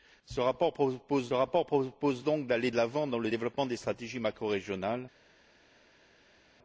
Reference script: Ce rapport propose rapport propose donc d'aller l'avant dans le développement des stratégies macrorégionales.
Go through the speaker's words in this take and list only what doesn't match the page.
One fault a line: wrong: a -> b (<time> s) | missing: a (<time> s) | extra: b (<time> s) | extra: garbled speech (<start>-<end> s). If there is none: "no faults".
no faults